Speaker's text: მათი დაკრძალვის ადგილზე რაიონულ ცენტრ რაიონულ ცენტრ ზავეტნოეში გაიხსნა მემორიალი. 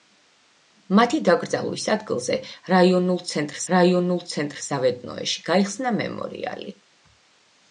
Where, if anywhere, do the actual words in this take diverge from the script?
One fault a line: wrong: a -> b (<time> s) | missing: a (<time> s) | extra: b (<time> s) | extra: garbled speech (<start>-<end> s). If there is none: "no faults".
no faults